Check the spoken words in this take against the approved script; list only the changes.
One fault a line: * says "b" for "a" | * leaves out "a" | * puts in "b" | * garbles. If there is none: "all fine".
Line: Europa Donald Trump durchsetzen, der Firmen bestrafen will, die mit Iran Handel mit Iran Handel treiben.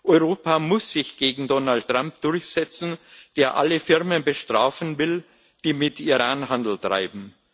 * puts in "muss sich gegen"
* puts in "alle"
* leaves out "mit Iran Handel"